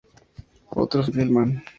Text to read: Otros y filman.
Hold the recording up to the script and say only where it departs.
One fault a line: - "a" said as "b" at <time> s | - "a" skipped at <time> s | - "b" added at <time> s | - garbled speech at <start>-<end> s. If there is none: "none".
none